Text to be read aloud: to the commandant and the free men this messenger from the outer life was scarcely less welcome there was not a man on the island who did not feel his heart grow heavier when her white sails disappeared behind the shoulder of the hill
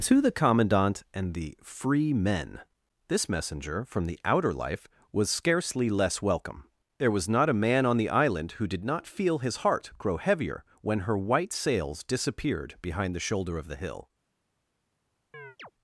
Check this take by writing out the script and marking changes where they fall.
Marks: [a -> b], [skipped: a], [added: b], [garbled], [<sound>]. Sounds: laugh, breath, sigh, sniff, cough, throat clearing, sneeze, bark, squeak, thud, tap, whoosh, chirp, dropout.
to the commandant and the free men this messenger from the outer life was scarcely less welcome there was not a man on the island who did not feel his heart grow heavier when her white sails disappeared behind the shoulder of the hill [chirp]